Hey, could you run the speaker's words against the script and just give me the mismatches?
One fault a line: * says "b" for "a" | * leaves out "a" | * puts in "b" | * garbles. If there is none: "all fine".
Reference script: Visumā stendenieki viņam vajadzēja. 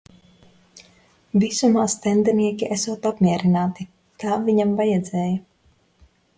* puts in "esot apmierināti tā"